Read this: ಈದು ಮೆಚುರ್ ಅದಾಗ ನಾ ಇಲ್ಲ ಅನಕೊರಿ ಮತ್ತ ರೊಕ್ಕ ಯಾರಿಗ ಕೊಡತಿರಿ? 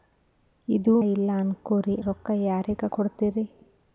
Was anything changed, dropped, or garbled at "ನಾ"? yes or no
yes